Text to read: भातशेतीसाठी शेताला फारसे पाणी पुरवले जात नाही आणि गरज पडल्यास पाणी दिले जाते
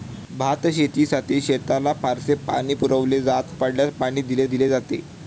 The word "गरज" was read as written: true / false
false